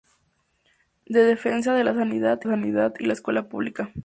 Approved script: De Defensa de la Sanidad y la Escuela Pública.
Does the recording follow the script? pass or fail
fail